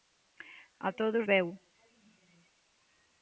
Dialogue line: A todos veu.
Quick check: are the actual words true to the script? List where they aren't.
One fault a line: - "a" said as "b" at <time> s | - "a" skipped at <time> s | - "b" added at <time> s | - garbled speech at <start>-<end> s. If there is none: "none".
none